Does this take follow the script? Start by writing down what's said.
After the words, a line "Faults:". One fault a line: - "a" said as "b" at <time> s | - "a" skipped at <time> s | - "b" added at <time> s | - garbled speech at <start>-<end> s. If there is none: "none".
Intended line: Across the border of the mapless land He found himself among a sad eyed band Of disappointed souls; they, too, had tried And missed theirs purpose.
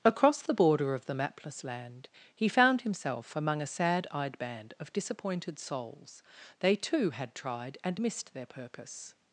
Across the border of the mapless land He found himself among a sad eyed band Of disappointed souls; they, too, had tried And missed their purpose.
Faults:
- "theirs" said as "their" at 8.3 s